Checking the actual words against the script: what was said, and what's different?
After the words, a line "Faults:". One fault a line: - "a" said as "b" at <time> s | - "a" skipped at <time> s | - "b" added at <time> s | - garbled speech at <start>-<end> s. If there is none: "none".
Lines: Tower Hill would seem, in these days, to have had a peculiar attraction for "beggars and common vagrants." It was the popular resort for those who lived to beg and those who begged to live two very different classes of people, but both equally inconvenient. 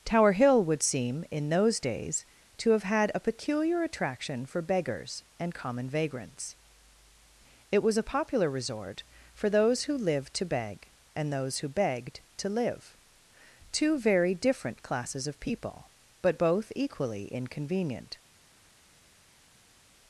Tower Hill would seem, in those days, to have had a peculiar attraction for "beggars and common vagrants." It was a popular resort for those who lived to beg and those who begged to live two very different classes of people, but both equally inconvenient.
Faults:
- "these" said as "those" at 1.5 s
- "the" said as "a" at 8.0 s